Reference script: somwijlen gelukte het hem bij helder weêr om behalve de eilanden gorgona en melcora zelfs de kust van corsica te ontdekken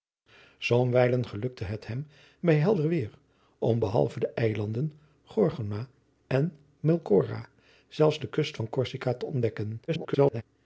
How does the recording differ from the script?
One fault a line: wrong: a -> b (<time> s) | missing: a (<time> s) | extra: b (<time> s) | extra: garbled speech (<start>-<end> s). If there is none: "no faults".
extra: garbled speech (9.9-10.4 s)